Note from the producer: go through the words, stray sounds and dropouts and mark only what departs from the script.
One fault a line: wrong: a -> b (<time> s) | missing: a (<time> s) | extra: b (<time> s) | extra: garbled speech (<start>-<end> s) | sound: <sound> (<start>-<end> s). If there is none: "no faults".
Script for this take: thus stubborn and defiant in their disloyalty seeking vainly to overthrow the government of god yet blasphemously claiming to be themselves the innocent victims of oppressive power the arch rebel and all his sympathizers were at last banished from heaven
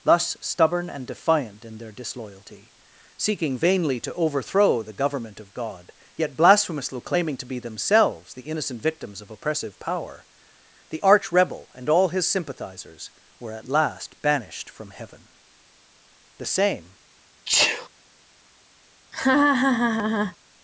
extra: the same (16.4 s)
sound: sneeze (17.4-17.9 s)
sound: laugh (19.1-20.4 s)